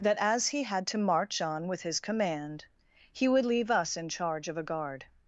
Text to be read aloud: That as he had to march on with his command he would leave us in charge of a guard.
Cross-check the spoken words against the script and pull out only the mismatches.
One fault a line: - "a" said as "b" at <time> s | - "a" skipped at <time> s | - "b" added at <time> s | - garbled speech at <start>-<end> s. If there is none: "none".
none